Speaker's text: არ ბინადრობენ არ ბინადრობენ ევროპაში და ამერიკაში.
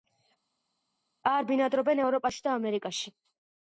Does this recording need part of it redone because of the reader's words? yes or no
yes